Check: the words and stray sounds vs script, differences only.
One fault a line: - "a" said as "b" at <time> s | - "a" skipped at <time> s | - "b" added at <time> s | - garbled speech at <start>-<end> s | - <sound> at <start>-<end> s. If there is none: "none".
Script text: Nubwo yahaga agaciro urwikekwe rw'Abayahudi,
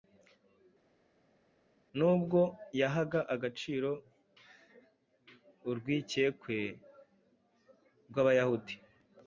none